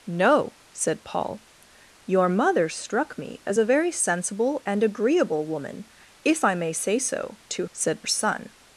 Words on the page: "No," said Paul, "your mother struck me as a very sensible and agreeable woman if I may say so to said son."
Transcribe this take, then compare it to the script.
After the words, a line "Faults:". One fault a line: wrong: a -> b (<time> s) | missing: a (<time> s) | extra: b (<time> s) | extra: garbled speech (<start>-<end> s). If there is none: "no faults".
"No," said Paul, "your mother struck me as a very sensible and agreeable woman if I may say so to said son."
Faults:
no faults